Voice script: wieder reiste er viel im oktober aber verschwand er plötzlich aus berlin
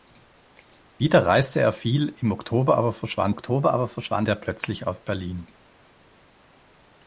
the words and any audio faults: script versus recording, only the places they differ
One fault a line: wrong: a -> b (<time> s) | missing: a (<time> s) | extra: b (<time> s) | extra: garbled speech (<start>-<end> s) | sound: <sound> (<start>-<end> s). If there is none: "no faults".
extra: oktober aber verschwand (3.3 s)